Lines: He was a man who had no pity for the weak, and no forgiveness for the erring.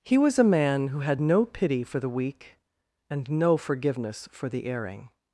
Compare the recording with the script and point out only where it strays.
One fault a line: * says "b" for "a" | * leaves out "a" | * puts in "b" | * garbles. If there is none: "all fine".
all fine